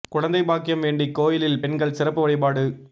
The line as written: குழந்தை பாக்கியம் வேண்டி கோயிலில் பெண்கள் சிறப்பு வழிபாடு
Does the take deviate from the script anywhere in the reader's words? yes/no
no